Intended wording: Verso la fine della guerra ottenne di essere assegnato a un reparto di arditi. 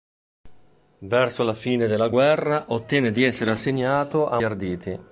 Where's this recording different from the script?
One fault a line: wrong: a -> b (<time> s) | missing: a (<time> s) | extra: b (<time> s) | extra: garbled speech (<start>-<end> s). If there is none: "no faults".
missing: un reparto di (4.4 s)